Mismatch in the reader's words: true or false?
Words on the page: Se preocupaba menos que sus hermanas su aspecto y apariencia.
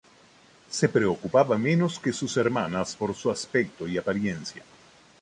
true